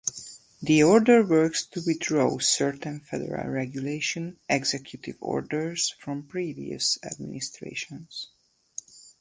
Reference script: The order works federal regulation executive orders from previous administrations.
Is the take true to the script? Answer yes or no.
no